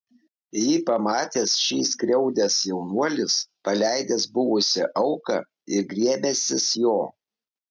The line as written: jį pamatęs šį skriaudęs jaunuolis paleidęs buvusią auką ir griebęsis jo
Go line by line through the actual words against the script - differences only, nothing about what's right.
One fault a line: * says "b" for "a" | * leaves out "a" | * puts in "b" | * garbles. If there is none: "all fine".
all fine